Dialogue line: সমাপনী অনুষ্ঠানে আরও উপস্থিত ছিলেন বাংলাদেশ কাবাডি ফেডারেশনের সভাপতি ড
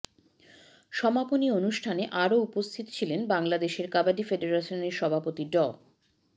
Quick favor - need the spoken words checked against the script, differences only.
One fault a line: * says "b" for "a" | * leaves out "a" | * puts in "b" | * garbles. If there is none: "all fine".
all fine